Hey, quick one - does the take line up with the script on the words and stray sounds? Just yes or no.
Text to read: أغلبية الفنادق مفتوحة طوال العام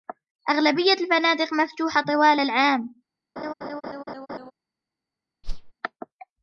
no